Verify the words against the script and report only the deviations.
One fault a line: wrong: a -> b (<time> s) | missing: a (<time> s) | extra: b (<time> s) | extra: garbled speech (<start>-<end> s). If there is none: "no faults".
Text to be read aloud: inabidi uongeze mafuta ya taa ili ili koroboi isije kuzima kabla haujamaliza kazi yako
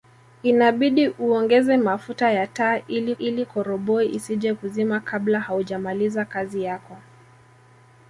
no faults